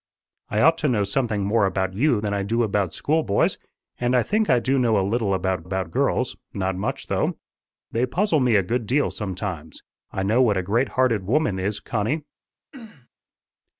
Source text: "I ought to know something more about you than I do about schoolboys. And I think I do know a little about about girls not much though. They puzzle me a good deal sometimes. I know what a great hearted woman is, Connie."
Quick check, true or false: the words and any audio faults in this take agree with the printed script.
false